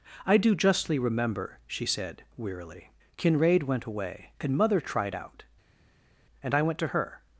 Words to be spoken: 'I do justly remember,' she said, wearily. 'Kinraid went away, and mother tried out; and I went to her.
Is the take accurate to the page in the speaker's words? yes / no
yes